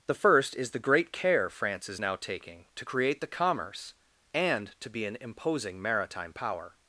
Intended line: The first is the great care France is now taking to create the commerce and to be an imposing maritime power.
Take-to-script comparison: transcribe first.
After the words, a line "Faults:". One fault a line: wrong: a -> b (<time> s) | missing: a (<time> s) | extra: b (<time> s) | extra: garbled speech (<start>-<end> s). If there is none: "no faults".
The first is the great care France is now taking to create the commerce and to be an imposing maritime power.
Faults:
no faults